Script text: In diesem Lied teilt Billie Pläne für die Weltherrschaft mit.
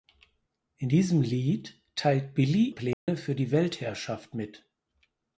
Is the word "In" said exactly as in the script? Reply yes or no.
yes